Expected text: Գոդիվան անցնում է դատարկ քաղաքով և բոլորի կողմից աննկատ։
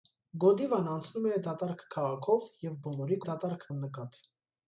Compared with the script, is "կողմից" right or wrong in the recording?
wrong